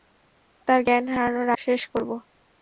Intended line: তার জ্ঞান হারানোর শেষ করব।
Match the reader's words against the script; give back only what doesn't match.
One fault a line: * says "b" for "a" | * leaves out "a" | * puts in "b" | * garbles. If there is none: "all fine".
all fine